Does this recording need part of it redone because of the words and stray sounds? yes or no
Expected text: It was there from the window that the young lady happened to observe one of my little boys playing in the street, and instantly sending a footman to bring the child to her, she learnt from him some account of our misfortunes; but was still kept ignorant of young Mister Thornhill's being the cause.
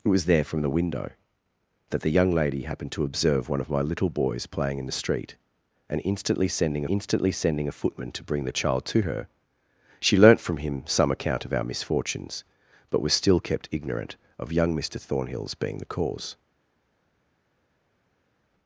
yes